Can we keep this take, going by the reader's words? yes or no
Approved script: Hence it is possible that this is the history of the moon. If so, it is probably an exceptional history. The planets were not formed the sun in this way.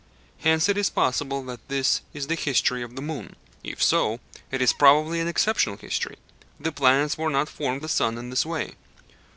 yes